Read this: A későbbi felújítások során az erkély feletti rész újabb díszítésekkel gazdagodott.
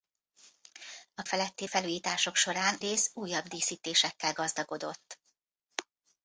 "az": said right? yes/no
no